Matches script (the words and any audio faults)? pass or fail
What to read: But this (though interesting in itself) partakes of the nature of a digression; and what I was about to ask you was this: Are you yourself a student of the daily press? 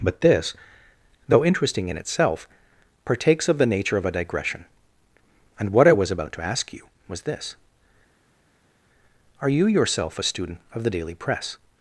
pass